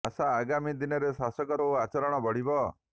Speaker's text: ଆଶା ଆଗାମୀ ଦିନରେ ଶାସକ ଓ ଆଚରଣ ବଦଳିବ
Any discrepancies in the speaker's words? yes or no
no